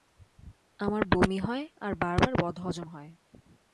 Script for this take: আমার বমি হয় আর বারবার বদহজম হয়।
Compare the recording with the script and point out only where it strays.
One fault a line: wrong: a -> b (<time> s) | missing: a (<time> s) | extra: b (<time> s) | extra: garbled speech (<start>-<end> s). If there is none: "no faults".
no faults